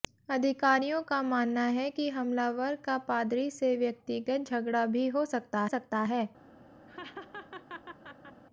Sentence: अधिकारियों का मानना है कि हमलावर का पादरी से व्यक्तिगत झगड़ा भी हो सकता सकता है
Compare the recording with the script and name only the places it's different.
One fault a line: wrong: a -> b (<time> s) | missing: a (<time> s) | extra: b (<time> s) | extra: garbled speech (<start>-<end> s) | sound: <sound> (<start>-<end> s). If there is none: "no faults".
sound: laugh (6.9-8.4 s)